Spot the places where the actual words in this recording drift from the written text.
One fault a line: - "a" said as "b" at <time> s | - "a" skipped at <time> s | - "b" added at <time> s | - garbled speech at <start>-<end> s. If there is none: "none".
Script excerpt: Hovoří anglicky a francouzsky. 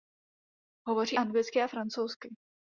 none